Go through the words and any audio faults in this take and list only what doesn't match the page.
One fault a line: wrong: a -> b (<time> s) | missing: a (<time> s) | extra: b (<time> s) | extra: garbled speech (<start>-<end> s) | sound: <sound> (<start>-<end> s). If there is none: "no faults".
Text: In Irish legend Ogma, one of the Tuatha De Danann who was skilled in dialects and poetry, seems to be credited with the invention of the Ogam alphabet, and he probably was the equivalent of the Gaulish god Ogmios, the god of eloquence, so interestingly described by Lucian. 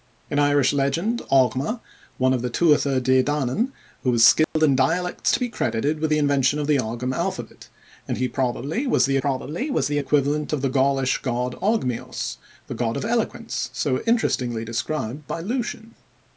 sound: dropout (4.4-4.6 s)
missing: and poetry seems (5.3 s)
extra: probably was the (9.2 s)